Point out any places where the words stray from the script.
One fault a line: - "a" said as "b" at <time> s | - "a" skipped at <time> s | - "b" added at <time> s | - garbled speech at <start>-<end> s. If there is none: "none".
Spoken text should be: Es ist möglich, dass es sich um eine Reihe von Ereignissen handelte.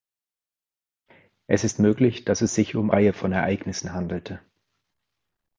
- "eine" skipped at 2.9 s